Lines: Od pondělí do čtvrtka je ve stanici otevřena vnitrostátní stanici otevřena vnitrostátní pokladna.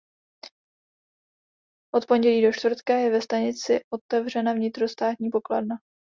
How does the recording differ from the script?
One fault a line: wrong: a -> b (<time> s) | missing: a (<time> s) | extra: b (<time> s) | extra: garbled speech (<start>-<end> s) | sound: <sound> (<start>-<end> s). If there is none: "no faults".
missing: stanici otevřena vnitrostátní (5.3 s)